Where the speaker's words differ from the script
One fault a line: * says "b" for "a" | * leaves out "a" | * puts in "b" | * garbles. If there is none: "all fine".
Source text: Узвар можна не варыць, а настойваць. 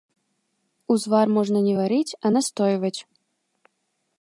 all fine